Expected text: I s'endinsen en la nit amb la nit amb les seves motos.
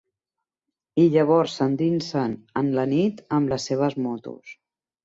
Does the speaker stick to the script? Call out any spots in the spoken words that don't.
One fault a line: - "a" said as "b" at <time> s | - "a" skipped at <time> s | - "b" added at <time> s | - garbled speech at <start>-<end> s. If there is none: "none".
- "llavors" added at 1.2 s
- "la nit amb" skipped at 3.6 s